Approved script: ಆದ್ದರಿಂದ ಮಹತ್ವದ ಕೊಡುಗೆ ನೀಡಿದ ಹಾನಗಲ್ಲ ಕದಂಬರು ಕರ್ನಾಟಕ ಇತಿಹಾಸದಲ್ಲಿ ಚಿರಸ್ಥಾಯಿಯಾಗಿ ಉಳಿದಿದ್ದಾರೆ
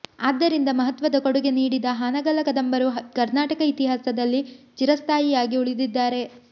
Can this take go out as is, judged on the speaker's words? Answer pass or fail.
pass